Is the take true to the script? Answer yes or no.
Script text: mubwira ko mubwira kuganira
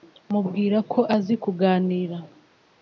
no